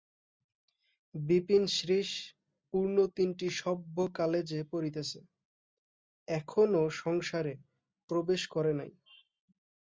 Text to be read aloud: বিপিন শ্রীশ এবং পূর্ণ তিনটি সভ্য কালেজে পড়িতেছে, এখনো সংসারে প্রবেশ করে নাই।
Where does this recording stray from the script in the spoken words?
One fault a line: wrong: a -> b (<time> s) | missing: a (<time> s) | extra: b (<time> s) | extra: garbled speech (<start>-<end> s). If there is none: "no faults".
missing: এবং (2.1 s)